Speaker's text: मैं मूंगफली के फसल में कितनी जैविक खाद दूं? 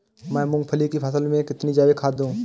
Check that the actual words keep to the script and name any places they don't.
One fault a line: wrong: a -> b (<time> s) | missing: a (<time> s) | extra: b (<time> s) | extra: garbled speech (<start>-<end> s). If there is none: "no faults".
wrong: के -> की (0.9 s)